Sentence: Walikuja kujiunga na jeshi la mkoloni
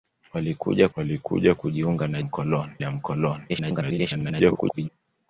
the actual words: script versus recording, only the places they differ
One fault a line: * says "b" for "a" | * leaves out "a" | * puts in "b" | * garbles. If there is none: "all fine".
* puts in "walikuja"
* says "mkoloni" for "jeshi"
* garbles